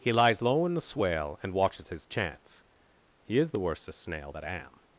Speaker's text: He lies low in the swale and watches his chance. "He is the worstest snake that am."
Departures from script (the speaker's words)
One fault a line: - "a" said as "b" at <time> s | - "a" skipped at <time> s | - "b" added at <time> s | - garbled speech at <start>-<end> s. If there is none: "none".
- "snake" said as "snail" at 4.0 s